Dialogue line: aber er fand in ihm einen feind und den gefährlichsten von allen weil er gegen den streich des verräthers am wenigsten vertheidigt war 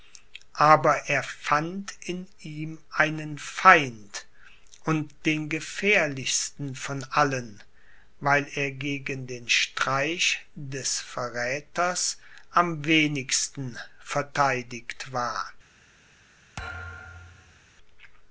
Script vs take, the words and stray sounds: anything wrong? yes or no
yes